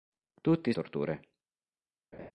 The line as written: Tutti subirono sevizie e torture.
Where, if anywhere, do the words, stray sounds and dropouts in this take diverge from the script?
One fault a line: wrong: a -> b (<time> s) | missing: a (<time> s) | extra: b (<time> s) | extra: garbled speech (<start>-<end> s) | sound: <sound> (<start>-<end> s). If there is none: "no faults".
missing: subirono sevizie e (0.7 s)
sound: laugh (2.1-2.3 s)